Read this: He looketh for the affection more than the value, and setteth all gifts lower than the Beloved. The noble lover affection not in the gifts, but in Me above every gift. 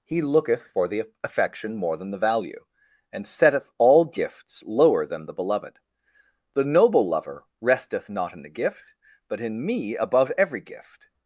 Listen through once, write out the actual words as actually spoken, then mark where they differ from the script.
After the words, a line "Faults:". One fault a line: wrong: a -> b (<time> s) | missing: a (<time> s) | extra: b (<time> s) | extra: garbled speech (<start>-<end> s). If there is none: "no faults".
He looketh for the affection more than the value, and setteth all gifts lower than the Beloved. The noble lover resteth not in the gift, but in Me above every gift.
Faults:
wrong: affection -> resteth (7.6 s)
wrong: gifts -> gift (8.5 s)